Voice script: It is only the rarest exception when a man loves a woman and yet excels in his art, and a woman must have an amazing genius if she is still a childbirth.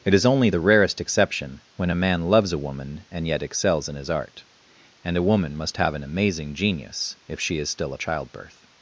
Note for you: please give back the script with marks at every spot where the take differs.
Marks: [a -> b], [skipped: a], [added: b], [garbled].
It is only the rarest exception when a man loves a woman and yet excels in his art, and a woman must have an amazing genius if she is still a childbirth.